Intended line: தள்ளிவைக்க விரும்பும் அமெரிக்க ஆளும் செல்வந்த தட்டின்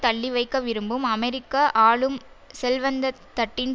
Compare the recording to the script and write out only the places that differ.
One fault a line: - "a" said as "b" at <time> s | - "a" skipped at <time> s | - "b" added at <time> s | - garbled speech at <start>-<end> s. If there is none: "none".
none